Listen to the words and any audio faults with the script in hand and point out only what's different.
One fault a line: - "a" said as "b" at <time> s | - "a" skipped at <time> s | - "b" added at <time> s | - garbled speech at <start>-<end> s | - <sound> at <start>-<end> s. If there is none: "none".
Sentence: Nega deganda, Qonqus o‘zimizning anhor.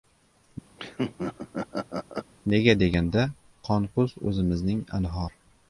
- laugh at 0.8-2.3 s